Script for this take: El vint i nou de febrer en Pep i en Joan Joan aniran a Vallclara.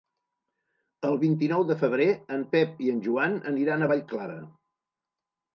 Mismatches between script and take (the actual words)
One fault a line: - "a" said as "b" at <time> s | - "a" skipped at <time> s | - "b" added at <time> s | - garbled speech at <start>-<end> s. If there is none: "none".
- "Joan" skipped at 3.4 s